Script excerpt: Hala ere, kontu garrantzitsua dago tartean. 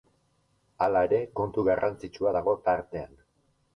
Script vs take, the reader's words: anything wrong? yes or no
no